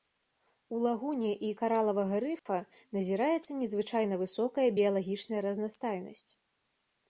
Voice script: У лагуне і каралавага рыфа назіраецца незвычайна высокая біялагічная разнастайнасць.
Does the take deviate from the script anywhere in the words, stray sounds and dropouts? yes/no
yes